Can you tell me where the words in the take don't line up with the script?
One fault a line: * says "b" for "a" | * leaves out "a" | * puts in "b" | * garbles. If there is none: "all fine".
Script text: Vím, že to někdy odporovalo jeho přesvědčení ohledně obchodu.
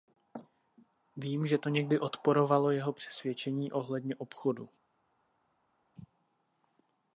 all fine